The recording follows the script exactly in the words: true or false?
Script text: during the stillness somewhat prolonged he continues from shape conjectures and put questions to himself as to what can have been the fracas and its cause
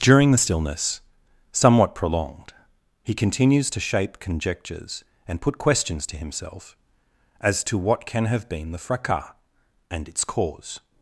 false